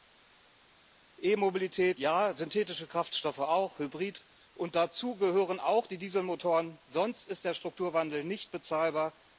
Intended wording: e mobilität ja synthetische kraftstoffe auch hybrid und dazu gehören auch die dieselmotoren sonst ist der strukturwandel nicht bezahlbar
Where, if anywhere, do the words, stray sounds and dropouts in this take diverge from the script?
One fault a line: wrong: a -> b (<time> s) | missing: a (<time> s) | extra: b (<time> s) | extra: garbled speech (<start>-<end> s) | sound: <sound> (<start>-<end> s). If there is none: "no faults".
no faults